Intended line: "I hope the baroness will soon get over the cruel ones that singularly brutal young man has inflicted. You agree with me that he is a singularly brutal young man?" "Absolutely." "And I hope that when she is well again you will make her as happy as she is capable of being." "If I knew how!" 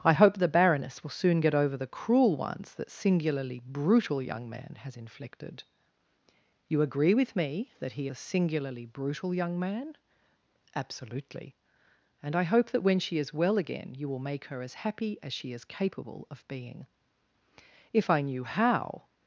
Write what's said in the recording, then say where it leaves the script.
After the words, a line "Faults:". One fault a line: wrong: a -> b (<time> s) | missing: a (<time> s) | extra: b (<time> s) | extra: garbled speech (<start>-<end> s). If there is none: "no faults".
"I hope the baroness will soon get over the cruel ones that singularly brutal young man has inflicted. You agree with me that he a singularly brutal young man?" "Absolutely." "And I hope that when she is well again you will make her as happy as she is capable of being." "If I knew how!"
Faults:
missing: is (8.1 s)